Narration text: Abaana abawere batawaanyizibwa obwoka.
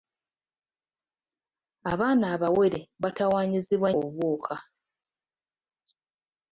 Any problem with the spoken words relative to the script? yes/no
no